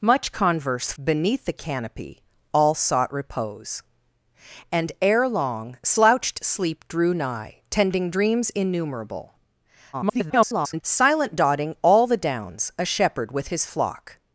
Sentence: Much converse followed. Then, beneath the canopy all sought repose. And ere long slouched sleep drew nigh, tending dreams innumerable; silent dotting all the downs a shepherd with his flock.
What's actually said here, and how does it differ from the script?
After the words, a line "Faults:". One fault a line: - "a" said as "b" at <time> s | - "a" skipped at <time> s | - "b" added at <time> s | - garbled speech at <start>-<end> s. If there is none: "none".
Much converse beneath the canopy all sought repose. And ere long slouched sleep drew nigh, tending dreams innumerable; [garbled] silent dotting all the downs a shepherd with his flock.
Faults:
- "followed Then" skipped at 0.9 s
- garbled speech at 9.9-10.8 s